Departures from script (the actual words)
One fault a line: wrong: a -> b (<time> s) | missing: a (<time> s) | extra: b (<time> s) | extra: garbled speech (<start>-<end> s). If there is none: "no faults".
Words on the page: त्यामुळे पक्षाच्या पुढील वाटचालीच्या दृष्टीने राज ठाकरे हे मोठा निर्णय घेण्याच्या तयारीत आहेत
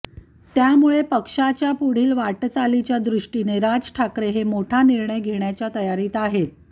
no faults